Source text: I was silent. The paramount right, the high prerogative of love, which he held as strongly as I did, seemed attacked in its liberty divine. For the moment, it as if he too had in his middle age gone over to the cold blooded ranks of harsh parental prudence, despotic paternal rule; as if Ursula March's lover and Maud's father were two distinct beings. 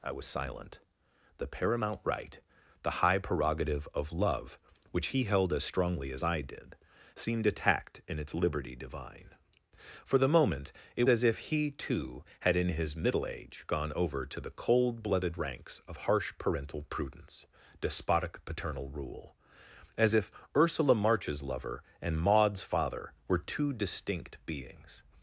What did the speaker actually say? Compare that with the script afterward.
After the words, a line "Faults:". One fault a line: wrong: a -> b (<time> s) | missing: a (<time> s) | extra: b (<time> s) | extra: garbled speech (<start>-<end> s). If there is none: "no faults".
I was silent. The paramount right, the high prerogative of love, which he held as strongly as I did, seemed attacked in its liberty divine. For the moment, it as if he too had in his middle age gone over to the cold blooded ranks of harsh parental prudence, despotic paternal rule; as if Ursula March's lover and Maud's father were two distinct beings.
Faults:
no faults